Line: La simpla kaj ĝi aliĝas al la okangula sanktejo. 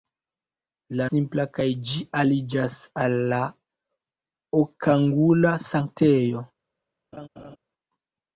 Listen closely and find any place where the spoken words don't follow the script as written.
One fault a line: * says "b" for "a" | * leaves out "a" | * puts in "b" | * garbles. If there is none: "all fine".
all fine